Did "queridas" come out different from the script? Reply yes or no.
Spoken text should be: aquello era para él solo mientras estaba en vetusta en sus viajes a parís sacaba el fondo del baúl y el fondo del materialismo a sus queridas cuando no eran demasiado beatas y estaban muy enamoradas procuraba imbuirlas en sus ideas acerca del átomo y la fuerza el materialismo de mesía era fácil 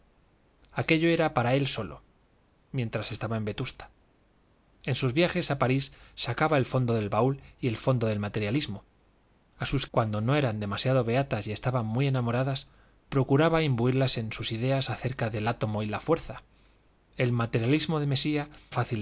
yes